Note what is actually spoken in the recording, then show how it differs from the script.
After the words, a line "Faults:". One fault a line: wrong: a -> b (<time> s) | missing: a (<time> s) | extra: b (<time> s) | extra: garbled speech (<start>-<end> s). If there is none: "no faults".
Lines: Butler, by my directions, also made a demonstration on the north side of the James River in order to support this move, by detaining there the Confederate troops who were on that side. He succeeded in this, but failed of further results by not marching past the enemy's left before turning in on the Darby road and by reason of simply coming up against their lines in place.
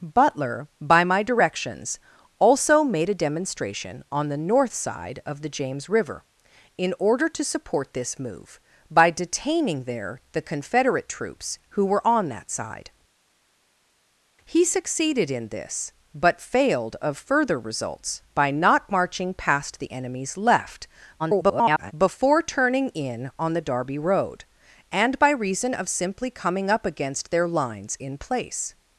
Butler, by my directions, also made a demonstration on the north side of the James River in order to support this move, by detaining there the Confederate troops who were on that side. He succeeded in this, but failed of further results by not marching past the enemy's left [garbled] before turning in on the Darby road and by reason of simply coming up against their lines in place.
Faults:
extra: garbled speech (21.2-21.9 s)